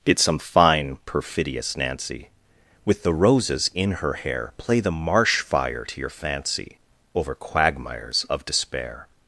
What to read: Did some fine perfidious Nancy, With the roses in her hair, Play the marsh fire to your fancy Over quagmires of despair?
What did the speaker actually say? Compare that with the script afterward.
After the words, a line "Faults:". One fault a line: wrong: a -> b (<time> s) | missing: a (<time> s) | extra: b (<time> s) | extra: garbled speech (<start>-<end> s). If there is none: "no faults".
Did some fine perfidious Nancy, With the roses in her hair, Play the marsh fire to your fancy Over quagmires of despair?
Faults:
no faults